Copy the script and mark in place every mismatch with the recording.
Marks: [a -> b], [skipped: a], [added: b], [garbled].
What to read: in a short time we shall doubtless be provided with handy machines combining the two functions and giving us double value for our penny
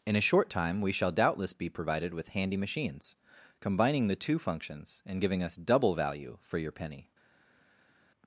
in a short time we shall doubtless be provided with handy machines combining the two functions and giving us double value for [our -> your] penny